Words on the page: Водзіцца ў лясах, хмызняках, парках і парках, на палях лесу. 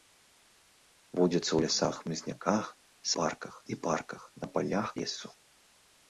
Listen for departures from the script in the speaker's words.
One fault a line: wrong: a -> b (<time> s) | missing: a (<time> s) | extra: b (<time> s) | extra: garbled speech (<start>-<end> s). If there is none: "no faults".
no faults